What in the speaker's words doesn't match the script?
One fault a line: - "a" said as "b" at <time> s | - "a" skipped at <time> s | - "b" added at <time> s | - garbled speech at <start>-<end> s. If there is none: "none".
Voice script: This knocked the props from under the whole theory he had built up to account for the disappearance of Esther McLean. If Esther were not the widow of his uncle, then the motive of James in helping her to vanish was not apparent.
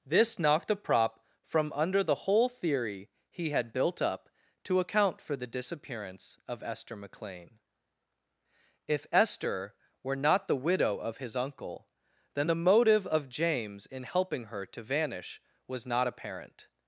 - "props" said as "prop" at 0.8 s